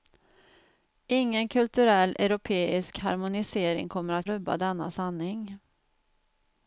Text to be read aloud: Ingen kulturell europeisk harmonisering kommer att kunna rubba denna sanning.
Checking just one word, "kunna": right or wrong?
wrong